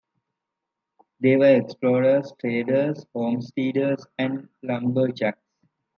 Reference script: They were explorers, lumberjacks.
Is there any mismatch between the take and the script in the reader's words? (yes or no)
yes